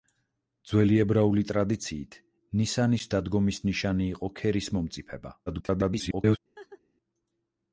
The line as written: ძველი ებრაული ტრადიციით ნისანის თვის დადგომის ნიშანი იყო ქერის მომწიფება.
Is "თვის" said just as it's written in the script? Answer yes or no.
no